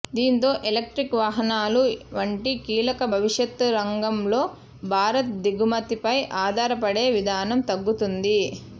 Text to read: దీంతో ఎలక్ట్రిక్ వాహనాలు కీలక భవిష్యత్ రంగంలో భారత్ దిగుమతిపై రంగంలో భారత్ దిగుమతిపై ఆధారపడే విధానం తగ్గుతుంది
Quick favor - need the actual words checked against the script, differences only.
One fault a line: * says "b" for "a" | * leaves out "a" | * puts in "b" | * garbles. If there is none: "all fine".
* puts in "వంటి"
* leaves out "రంగంలో భారత్ దిగుమతిపై"